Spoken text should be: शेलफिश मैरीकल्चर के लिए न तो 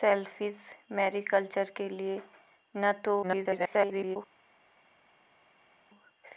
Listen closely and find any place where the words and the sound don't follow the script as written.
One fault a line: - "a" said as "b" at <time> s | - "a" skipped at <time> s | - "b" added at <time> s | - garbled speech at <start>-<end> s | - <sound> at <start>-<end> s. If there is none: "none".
- garbled speech at 3.2-4.2 s